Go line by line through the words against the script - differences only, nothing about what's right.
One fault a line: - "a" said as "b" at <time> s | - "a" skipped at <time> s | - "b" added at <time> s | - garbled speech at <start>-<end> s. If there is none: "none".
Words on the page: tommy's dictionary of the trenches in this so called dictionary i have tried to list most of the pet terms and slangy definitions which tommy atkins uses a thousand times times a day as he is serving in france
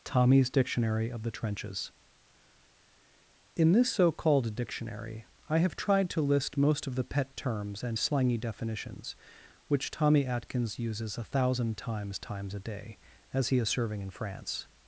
none